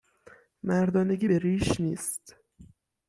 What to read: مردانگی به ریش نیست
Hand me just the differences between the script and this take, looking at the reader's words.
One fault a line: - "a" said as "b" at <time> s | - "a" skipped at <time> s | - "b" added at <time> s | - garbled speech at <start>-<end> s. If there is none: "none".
none